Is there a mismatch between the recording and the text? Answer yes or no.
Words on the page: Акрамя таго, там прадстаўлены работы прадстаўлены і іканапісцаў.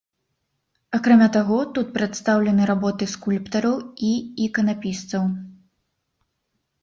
yes